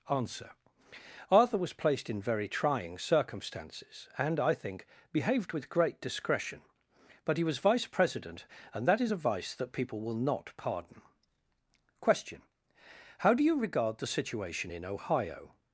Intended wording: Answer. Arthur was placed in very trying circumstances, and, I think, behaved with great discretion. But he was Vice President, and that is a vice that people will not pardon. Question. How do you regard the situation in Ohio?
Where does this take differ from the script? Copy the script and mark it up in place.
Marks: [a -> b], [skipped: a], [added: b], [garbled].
Answer. Arthur was placed in very trying circumstances, and, I think, behaved with great discretion. But he was Vice President, and that is a vice that people will not pardon. Question. How do you regard the situation in Ohio?